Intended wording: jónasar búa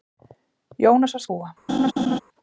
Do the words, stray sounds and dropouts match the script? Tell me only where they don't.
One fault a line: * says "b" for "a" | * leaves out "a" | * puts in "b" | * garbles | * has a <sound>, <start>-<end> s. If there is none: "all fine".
* has a laugh, 1.7-2.2 s